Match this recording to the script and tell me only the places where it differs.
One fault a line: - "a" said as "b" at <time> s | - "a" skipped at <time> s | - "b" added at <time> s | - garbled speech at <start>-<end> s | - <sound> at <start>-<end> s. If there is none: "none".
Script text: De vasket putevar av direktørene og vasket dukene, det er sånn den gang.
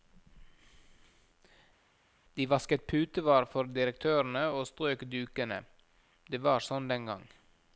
- "av" said as "for" at 3.5 s
- "vasket" said as "strøk" at 4.7 s
- "er" said as "var" at 6.4 s